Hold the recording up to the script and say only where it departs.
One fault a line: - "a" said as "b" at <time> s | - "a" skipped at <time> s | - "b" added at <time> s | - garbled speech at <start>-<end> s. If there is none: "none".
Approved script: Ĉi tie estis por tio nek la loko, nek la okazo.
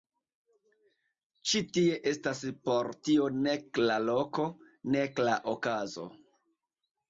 - "estis" said as "estas" at 2.1 s